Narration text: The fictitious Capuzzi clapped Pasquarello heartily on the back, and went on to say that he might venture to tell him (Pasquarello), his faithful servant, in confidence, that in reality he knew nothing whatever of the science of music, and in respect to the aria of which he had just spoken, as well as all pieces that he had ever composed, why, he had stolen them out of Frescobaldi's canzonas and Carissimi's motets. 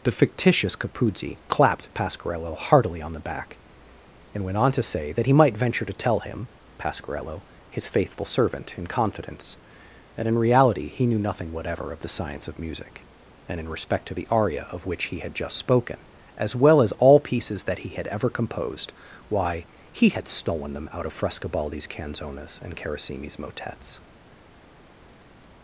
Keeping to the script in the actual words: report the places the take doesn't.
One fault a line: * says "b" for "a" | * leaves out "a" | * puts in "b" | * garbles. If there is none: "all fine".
all fine